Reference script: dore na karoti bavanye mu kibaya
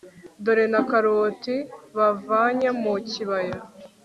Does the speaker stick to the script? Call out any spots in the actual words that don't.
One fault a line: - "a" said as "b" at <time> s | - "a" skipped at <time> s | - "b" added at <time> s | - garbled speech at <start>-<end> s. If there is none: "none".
none